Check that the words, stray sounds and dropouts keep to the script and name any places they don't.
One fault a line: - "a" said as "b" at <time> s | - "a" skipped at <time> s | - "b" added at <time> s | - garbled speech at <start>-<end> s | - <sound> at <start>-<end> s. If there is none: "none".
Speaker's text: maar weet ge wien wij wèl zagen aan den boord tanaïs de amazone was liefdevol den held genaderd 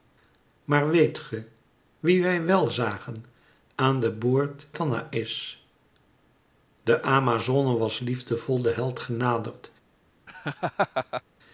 - laugh at 10.3-11.2 s